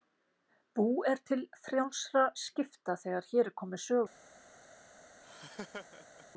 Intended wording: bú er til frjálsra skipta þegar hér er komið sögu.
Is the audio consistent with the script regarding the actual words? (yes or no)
yes